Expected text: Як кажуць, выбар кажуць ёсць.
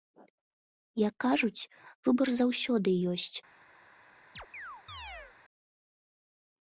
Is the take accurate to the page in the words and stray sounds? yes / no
no